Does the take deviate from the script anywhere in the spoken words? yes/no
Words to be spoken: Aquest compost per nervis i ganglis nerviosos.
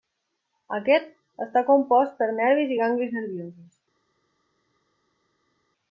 yes